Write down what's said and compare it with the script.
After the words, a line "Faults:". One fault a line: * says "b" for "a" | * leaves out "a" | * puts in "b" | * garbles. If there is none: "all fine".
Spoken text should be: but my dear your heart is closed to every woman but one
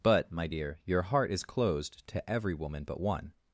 but my dear your heart is closed to every woman but one
Faults:
all fine